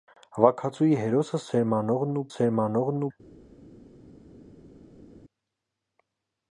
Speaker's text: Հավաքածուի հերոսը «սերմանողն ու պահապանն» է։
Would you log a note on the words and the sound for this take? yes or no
yes